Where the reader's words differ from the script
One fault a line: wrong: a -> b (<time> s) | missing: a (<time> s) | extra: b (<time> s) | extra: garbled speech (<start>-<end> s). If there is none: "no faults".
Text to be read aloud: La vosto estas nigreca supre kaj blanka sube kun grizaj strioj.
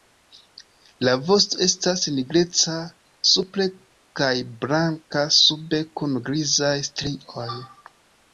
no faults